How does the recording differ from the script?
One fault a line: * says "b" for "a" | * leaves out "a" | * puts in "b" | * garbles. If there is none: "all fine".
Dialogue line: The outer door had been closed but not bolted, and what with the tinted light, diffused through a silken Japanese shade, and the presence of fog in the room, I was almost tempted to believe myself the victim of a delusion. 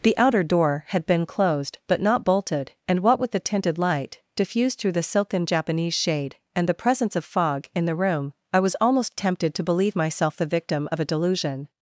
* says "the" for "a"